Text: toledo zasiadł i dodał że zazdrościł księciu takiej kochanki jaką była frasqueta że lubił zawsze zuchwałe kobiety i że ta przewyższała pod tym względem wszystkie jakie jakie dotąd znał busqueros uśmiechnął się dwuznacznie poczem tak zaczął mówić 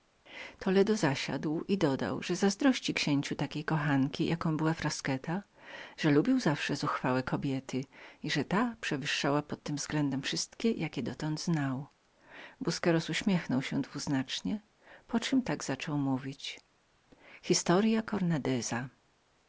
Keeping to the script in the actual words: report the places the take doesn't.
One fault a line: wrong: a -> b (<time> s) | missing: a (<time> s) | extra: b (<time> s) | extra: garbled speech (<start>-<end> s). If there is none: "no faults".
missing: jakie (11.0 s)